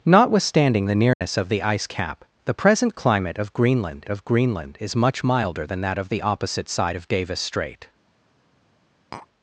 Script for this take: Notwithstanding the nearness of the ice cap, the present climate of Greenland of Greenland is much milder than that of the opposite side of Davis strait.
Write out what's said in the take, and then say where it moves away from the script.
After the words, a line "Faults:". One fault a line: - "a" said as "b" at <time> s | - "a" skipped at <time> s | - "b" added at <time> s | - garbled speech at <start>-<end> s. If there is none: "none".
Notwithstanding the nearness of the ice cap, the present climate of Greenland of Greenland is much milder than that of the opposite side of Davis strait.
Faults:
none